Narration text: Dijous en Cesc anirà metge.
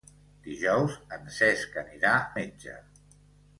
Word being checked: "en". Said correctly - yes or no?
yes